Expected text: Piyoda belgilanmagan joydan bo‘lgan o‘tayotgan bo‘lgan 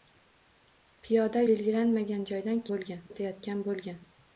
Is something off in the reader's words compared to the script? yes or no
no